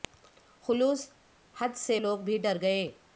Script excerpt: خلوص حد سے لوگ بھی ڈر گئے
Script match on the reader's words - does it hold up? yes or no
yes